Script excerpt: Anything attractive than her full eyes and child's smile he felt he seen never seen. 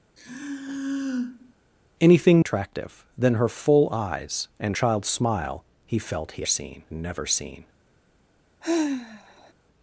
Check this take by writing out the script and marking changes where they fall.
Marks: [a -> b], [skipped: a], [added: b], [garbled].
Anything attractive than her full eyes and child's smile he felt he seen never seen.